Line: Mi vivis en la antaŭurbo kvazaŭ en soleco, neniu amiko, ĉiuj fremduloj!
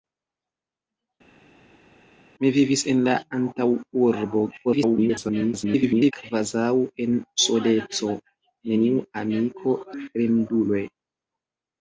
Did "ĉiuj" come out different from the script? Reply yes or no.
yes